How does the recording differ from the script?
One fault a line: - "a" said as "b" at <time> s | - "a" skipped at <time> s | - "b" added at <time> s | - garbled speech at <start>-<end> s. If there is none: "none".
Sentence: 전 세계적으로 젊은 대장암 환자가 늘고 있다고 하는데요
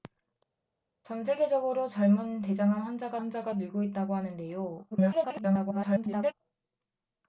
- "환자가" added at 3.2 s
- garbled speech at 4.9-6.3 s